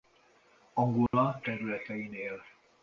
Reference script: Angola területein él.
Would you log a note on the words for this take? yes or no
no